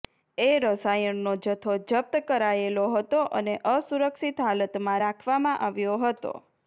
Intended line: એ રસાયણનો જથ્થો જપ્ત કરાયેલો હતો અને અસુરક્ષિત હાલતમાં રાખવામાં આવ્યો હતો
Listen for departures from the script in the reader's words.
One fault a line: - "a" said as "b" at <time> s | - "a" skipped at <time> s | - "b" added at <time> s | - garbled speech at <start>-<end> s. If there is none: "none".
none